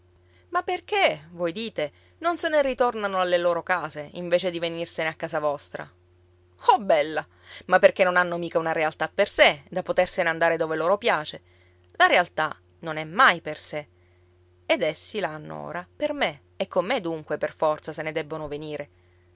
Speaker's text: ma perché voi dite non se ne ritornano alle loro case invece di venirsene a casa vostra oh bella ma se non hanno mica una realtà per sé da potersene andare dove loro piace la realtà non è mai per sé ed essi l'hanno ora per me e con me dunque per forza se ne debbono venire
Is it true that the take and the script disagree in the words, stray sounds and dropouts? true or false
true